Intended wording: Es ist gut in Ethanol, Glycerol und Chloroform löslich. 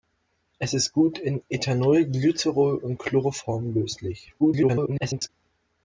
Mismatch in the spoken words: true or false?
true